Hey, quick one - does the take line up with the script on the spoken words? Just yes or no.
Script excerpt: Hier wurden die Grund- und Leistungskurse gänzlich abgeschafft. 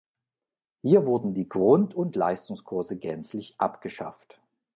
yes